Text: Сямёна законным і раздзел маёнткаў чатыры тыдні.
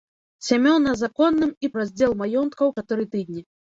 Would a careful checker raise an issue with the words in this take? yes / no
no